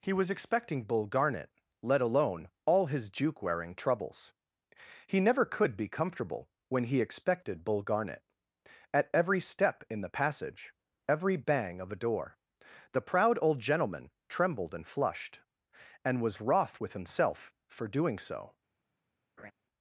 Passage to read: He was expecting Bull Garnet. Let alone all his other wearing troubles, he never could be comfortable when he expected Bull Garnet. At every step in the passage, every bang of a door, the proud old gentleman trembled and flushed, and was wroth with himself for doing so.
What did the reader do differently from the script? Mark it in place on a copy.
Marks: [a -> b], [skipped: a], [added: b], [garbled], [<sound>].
He was expecting Bull Garnet. Let alone all his [other -> juke] wearing troubles, he never could be comfortable when he expected Bull Garnet. At every step in the passage, every bang of a door, the proud old gentleman trembled and flushed, and was wroth with himself for doing so. [laugh]